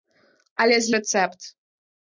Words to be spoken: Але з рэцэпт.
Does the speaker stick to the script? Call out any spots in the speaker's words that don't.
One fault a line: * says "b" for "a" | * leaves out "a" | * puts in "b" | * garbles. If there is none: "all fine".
all fine